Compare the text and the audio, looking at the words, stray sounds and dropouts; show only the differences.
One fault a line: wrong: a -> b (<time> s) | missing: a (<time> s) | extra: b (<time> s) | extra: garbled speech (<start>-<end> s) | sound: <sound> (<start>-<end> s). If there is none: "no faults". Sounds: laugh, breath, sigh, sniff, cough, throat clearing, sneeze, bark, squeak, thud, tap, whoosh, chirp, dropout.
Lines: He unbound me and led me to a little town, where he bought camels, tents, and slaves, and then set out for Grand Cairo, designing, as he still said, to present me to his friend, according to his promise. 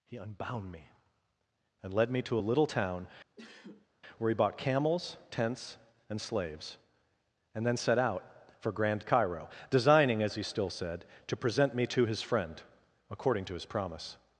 sound: sneeze (3.4-3.9 s)